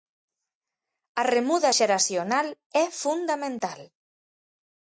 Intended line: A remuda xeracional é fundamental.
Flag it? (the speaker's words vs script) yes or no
no